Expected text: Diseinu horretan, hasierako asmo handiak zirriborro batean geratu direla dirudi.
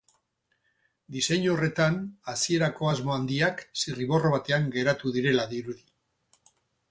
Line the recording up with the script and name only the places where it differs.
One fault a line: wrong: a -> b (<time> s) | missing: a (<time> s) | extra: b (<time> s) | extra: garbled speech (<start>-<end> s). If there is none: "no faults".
no faults